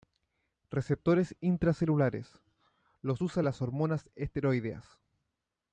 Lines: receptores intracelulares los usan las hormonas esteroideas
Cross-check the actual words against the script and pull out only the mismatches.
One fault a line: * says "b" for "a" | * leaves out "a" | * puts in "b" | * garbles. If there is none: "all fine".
all fine